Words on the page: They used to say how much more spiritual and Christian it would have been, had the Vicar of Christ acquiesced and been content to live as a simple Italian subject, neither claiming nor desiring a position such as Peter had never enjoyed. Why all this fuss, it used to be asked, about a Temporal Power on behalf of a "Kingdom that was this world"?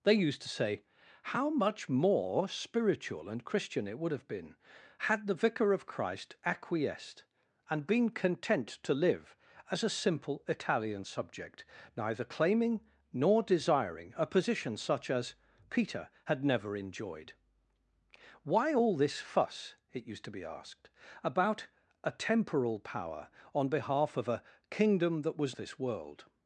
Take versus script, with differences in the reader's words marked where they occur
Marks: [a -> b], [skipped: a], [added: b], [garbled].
They used to say how much more spiritual and Christian it would have been, had the Vicar of Christ acquiesced and been content to live as a simple Italian subject, neither claiming nor desiring a position such as Peter had never enjoyed. Why all this fuss, it used to be asked, about a Temporal Power on behalf of a "Kingdom that was this world"?